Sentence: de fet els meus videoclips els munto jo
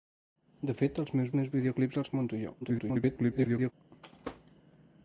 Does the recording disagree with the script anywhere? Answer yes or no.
yes